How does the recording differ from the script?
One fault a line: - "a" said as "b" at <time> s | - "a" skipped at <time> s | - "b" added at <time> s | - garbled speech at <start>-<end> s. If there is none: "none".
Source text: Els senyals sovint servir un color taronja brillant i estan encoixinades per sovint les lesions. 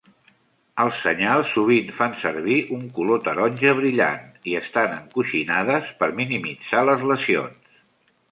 - "fan" added at 2.0 s
- "sovint" said as "minimitzar" at 6.2 s